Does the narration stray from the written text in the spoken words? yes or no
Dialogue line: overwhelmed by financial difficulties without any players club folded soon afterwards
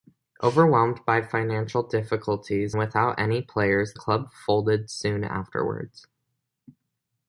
no